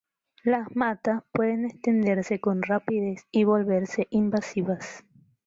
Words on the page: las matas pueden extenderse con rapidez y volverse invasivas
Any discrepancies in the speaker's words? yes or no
no